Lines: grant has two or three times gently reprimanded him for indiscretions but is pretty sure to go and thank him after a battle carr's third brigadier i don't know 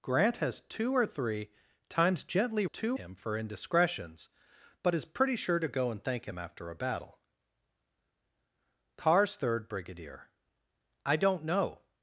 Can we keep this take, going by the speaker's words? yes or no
no